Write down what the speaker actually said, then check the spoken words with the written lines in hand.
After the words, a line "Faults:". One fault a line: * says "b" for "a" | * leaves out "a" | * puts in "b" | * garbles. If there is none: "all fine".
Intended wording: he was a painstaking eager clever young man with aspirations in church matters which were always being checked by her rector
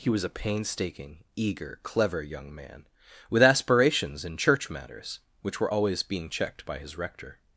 he was a painstaking eager clever young man with aspirations in church matters which were always being checked by his rector
Faults:
* says "his" for "her"